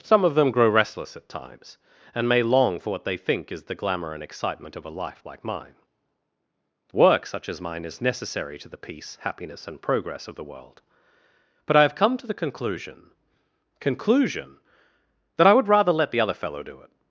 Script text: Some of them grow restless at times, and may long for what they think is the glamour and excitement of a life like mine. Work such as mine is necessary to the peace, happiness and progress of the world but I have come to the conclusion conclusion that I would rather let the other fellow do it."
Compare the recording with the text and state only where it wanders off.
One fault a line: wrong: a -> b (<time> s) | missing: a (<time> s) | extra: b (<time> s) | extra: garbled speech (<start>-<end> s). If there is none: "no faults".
no faults